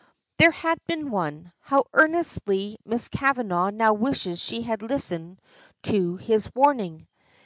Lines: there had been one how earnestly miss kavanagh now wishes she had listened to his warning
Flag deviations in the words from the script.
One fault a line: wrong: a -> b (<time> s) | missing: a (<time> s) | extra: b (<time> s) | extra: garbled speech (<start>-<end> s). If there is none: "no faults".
no faults